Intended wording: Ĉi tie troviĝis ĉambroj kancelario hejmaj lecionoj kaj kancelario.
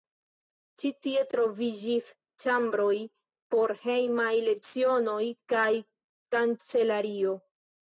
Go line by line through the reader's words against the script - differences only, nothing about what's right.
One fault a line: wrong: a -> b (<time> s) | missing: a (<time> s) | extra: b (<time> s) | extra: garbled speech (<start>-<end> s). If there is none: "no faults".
wrong: kancelario -> por (3.6 s)